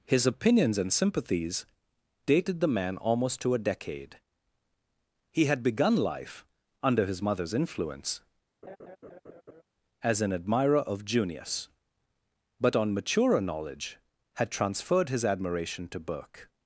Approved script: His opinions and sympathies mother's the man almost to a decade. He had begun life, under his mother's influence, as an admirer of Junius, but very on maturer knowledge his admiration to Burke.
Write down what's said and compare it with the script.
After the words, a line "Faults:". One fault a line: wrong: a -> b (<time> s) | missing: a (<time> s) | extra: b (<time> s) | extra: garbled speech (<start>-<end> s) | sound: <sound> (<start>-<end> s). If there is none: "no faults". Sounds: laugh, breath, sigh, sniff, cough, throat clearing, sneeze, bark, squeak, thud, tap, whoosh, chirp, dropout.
His opinions and sympathies dated the man almost to a decade. He had begun life, under his mother's influence, as an admirer of Junius, but on maturer knowledge had transferred his admiration to Burke.
Faults:
wrong: mother's -> dated (2.2 s)
sound: laugh (8.6-9.6 s)
missing: very (12.8 s)
extra: had transferred (14.4 s)